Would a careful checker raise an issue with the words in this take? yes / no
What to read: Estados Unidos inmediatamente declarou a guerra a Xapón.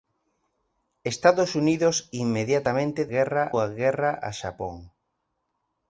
yes